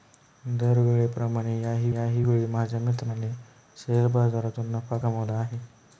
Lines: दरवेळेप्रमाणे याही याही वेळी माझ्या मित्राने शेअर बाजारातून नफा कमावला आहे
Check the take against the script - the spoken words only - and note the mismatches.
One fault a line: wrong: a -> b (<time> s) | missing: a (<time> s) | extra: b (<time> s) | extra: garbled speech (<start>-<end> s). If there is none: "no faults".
no faults